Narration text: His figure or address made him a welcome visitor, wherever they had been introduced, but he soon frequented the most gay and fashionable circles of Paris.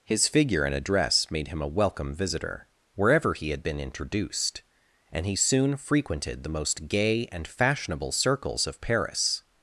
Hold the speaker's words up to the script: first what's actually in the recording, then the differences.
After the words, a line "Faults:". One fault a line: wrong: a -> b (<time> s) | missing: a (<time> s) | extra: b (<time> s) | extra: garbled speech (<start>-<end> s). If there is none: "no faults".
His figure and address made him a welcome visitor, wherever he had been introduced, and he soon frequented the most gay and fashionable circles of Paris.
Faults:
wrong: or -> and (0.6 s)
wrong: they -> he (3.3 s)
wrong: but -> and (5.1 s)